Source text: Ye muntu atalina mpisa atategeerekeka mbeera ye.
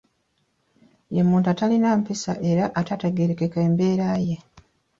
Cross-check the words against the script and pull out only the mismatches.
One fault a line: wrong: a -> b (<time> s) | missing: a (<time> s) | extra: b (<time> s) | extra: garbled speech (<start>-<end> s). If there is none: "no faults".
extra: era (2.5 s)